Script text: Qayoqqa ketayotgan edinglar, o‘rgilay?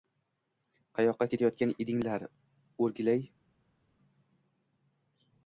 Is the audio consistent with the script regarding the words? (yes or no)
yes